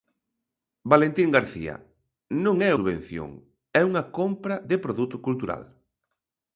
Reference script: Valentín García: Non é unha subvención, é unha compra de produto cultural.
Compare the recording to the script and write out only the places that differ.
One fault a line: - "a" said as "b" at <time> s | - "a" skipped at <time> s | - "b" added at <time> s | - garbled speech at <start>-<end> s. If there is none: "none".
- "unha" skipped at 2.7 s